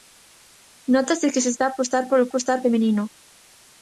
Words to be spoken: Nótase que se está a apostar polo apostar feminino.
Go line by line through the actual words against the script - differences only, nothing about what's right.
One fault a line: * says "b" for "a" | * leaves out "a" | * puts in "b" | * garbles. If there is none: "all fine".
all fine